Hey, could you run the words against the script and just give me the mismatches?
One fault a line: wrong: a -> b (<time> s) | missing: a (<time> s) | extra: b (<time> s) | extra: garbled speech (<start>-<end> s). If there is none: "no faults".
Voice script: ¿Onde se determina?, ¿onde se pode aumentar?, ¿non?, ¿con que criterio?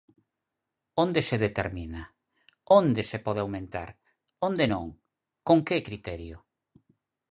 extra: onde (4.5 s)